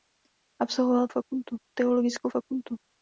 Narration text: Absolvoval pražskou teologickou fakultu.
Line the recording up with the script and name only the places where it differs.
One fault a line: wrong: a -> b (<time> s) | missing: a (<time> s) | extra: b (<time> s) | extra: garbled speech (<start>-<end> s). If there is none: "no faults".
wrong: pražskou -> fakultu (1.1 s)